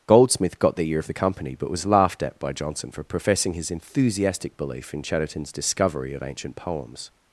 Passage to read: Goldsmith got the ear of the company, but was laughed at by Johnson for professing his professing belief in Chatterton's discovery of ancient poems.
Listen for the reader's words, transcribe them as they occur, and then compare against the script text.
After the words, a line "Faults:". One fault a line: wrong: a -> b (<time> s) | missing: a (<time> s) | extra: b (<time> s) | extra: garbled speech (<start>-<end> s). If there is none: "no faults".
Goldsmith got the ear of the company, but was laughed at by Johnson for professing his enthusiastic belief in Chatterton's discovery of ancient poems.
Faults:
wrong: professing -> enthusiastic (3.7 s)